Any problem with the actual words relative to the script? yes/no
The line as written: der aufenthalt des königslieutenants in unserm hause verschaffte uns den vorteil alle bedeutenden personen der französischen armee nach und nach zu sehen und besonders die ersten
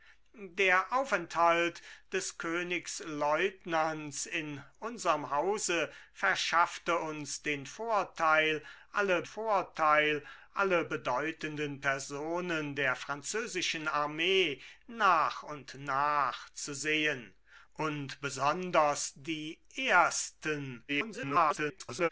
yes